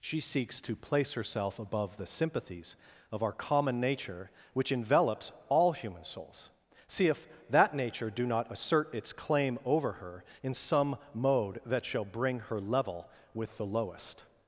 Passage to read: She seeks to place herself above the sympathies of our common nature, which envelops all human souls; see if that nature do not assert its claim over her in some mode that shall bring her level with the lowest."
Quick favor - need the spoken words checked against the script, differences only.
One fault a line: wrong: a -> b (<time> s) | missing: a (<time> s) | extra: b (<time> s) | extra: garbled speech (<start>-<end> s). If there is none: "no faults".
no faults